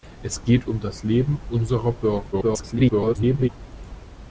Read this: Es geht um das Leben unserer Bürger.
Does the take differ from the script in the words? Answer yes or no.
yes